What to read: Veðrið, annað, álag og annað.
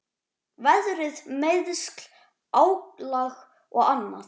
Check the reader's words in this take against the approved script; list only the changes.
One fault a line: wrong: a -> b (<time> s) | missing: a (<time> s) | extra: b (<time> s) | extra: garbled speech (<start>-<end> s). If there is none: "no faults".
wrong: annað -> meiðsl (1.4 s)